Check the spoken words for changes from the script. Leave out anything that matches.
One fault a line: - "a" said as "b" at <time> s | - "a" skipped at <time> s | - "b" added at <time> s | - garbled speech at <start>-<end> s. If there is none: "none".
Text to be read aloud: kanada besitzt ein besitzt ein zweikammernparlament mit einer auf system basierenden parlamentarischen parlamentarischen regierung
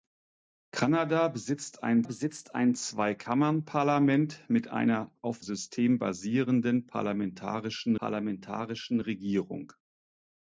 none